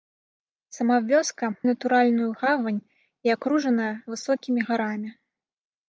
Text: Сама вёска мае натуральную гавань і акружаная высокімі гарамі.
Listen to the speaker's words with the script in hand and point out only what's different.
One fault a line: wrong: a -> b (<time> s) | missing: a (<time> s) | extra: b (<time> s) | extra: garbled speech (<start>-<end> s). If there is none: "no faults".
missing: мае (1.5 s)